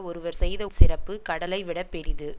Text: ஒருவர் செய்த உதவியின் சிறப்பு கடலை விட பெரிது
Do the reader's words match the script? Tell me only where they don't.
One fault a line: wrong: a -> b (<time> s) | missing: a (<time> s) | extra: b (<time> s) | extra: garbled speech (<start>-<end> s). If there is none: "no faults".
missing: உதவியின் (0.6 s)